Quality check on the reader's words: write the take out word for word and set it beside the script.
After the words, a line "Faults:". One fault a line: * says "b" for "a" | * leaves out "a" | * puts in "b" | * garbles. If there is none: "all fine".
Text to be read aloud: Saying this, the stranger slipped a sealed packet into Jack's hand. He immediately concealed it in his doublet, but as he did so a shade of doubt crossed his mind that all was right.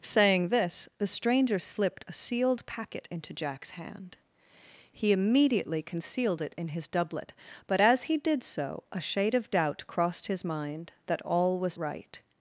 Saying this, the stranger slipped a sealed packet into Jack's hand. He immediately concealed it in his doublet, but as he did so a shade of doubt crossed his mind that all was right.
Faults:
all fine